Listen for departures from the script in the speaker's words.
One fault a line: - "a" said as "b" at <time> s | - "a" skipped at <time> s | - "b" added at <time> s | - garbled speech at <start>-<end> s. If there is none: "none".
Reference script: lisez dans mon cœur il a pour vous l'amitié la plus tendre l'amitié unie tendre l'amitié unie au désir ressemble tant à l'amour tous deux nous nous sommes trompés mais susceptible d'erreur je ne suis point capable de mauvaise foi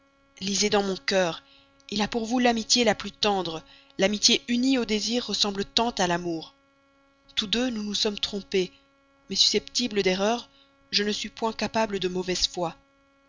- "tendre l'amitié unie" skipped at 4.8 s